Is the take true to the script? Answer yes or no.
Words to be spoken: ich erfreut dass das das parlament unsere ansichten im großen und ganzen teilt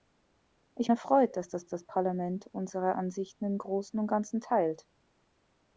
yes